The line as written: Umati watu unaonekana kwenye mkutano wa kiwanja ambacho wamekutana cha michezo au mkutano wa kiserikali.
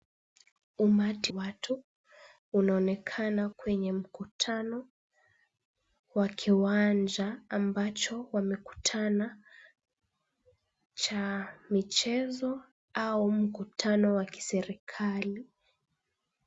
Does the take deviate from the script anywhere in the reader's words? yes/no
no